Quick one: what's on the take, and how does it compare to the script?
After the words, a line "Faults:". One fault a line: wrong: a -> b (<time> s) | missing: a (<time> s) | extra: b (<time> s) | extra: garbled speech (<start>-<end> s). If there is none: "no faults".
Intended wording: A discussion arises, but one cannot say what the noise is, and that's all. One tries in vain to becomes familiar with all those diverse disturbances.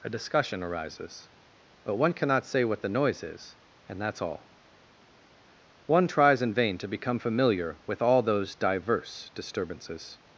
A discussion arises, but one cannot say what the noise is, and that's all. One tries in vain to become familiar with all those diverse disturbances.
Faults:
wrong: becomes -> become (6.9 s)